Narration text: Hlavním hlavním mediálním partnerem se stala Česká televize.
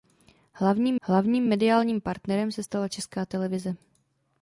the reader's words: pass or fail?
pass